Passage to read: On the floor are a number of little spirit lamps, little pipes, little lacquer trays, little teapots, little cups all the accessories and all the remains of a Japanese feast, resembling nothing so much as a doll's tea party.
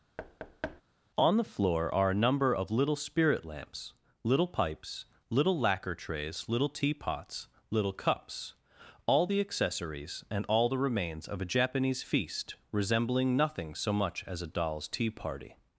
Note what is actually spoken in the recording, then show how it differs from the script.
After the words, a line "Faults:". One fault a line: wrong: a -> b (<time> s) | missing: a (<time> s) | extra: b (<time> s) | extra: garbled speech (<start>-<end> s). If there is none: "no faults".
On the floor are a number of little spirit lamps, little pipes, little lacquer trays, little teapots, little cups all the accessories and all the remains of a Japanese feast, resembling nothing so much as a doll's tea party.
Faults:
no faults